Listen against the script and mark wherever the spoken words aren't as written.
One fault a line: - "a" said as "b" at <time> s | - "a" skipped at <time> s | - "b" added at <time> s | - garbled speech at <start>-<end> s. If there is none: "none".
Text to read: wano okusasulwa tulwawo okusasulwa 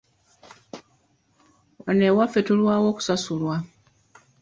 - "okusasulwa" said as "ewaffe" at 2.1 s